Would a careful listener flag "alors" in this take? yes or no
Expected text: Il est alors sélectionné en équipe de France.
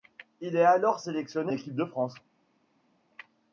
no